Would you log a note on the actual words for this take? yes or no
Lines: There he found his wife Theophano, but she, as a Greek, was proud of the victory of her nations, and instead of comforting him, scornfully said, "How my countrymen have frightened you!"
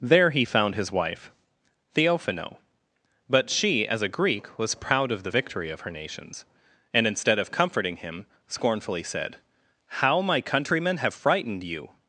no